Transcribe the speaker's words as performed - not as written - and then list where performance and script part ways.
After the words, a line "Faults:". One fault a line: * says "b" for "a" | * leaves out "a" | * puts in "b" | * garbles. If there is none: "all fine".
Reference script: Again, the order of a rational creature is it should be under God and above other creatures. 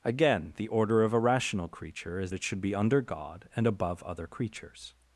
Again, the order of a rational creature is it should be under God and above other creatures.
Faults:
all fine